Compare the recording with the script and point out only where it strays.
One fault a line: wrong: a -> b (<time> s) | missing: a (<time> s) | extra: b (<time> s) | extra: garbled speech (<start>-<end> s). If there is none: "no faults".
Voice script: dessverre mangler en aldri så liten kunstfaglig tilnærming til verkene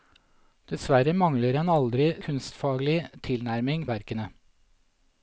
missing: så liten (2.1 s)
missing: til (3.9 s)